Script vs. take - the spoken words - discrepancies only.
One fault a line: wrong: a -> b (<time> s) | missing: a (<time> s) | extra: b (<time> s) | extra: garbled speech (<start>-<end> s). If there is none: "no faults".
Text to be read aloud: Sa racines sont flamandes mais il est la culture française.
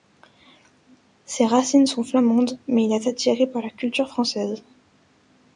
wrong: Sa -> Ses (1.2 s)
extra: attiré par (3.1 s)